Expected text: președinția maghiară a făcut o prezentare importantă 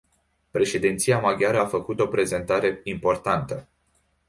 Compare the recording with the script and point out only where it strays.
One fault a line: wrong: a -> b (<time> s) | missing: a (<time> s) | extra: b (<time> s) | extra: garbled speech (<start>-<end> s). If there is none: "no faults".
no faults